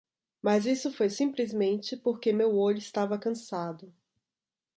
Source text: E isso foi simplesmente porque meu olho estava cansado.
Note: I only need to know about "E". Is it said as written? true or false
false